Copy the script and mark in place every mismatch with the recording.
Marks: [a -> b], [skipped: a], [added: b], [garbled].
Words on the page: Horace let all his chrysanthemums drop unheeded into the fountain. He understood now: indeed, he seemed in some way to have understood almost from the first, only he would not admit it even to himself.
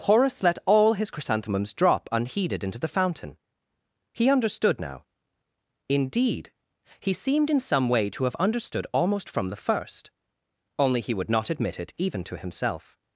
Horace let all his chrysanthemums drop unheeded into the fountain. He understood now: indeed, he seemed in some way to have understood almost from the first, only he would not admit it even to himself.